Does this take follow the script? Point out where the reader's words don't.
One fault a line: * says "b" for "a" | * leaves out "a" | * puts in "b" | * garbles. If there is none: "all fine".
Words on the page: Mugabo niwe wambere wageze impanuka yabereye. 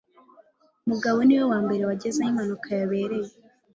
* puts in "aho"